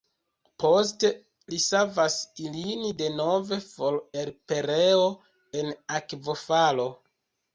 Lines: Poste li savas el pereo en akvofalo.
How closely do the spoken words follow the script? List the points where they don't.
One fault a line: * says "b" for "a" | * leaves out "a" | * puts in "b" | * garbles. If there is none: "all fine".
* puts in "ilin denove for"